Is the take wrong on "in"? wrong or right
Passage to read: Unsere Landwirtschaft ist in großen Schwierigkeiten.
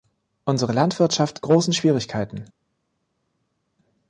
wrong